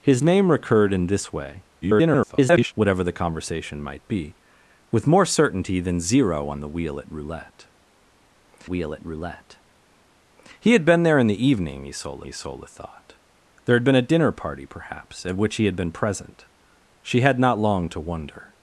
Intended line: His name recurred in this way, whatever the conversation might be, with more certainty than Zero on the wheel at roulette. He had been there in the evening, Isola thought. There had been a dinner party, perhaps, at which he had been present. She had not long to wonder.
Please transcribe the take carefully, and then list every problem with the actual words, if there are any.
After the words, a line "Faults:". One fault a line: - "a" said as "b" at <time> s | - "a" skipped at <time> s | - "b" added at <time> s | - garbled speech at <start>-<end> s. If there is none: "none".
His name recurred in this way, [garbled] whatever the conversation might be, with more certainty than Zero on the wheel at roulette wheel at roulette. He had been there in the evening, Isola Isola thought. There had been a dinner party, perhaps, at which he had been present. She had not long to wonder.
Faults:
- garbled speech at 1.8-2.7 s
- "wheel at roulette" added at 8.6 s
- "Isola" added at 12.3 s